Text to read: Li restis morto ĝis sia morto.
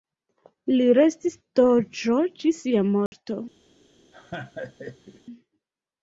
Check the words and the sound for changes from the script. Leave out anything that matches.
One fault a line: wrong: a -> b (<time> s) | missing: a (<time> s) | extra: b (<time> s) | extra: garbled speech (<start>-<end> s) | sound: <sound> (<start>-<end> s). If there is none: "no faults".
wrong: morto -> doĝo (1.6 s)
sound: dropout (3.1-3.1 s)
sound: laugh (4.1-5.2 s)